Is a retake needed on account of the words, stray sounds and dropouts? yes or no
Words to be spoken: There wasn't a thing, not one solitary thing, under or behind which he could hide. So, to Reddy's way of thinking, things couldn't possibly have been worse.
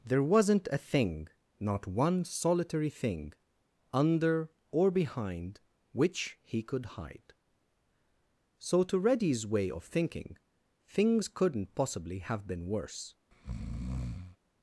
yes